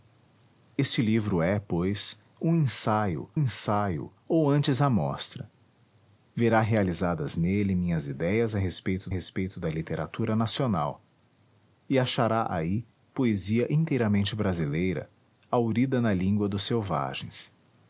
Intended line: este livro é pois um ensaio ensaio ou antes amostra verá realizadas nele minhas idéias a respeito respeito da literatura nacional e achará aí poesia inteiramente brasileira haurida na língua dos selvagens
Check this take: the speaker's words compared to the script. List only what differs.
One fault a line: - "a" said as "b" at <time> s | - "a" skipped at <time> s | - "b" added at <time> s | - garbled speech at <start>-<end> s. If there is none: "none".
none